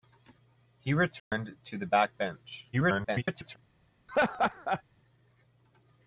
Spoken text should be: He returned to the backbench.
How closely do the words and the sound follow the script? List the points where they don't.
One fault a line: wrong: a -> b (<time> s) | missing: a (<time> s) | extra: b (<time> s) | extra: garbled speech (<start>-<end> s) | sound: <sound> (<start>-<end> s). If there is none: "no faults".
sound: dropout (1.2-1.3 s)
extra: garbled speech (2.7-3.6 s)
sound: laugh (4.1-4.8 s)